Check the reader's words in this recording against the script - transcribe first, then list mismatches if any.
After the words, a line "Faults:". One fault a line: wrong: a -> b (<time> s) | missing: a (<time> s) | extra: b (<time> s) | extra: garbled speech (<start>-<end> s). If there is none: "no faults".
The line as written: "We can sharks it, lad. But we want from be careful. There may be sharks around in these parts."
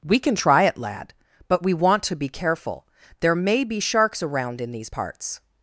"We can try it, lad. But we want to be careful. There may be sharks around in these parts."
Faults:
wrong: sharks -> try (0.3 s)
wrong: from -> to (2.0 s)